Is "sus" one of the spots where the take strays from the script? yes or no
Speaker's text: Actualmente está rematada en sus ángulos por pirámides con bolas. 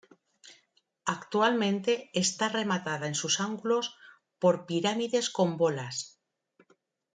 no